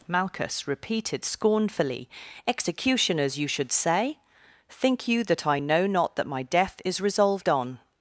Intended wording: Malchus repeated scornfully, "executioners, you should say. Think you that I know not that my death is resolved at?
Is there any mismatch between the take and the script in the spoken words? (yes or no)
yes